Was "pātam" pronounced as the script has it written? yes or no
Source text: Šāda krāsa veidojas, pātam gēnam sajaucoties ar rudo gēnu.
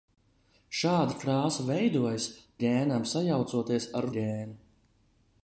no